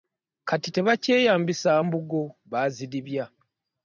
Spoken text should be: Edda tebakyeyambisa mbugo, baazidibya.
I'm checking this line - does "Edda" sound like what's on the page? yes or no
no